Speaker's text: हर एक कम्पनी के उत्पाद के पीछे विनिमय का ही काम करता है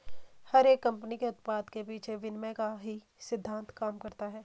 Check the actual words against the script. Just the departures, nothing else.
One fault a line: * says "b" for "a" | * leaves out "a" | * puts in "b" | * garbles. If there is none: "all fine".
* puts in "सिद्धान्त"